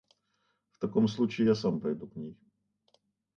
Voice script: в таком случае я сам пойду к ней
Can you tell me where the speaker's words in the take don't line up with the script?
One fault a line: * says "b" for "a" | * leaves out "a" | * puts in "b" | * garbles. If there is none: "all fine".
all fine